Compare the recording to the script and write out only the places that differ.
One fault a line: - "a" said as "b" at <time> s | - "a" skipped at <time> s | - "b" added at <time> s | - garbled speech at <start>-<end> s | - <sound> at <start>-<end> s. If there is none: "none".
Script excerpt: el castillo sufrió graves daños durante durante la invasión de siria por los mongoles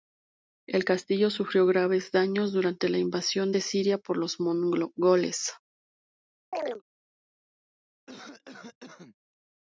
- "durante" skipped at 2.9 s
- chirp at 6.5-6.8 s
- cough at 8.1-9.2 s